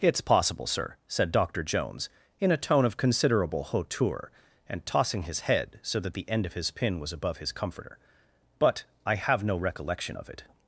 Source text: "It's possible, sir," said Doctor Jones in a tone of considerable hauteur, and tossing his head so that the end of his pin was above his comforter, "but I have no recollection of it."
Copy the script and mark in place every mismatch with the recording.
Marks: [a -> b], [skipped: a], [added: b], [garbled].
"It's possible, sir," said Doctor Jones in a tone of considerable hauteur, and tossing his head so that the end of his pin was above his comforter, "but I have no recollection of it."